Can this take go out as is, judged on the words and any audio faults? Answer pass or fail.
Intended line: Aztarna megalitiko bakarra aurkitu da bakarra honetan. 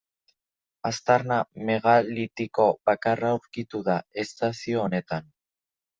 fail